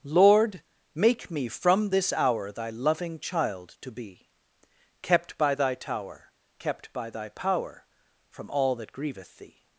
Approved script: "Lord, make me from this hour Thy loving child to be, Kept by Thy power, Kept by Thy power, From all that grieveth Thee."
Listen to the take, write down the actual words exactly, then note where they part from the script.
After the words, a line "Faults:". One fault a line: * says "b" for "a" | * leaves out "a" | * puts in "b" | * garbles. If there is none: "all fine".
"Lord, make me from this hour Thy loving child to be, Kept by Thy tower, Kept by Thy power, From all that grieveth Thee."
Faults:
* says "tower" for "power"